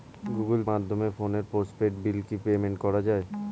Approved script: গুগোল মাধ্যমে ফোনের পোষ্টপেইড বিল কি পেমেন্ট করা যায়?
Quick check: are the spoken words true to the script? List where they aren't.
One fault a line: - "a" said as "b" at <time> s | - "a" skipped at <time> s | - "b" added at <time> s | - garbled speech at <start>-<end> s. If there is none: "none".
none